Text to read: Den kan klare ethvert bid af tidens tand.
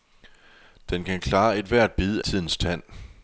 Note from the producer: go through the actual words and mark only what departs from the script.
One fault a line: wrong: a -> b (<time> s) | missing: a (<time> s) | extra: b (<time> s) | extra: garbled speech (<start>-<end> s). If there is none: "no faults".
missing: af (2.2 s)